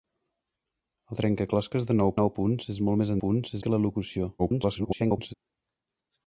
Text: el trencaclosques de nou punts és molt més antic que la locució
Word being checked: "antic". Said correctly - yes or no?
no